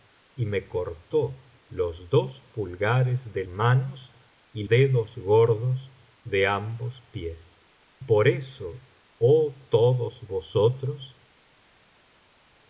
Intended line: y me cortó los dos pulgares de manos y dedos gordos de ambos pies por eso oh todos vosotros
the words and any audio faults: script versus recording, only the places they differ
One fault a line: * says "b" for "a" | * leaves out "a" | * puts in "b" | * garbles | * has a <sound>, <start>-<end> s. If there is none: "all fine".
all fine